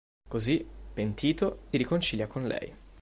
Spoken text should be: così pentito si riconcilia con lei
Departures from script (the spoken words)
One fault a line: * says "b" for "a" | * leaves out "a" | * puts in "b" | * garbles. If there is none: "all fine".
* leaves out "si"